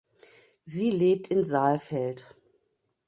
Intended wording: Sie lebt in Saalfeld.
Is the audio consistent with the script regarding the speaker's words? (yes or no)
yes